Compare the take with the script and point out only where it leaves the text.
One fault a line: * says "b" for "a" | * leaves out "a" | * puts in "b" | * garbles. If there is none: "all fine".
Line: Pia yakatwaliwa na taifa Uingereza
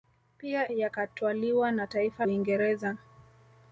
all fine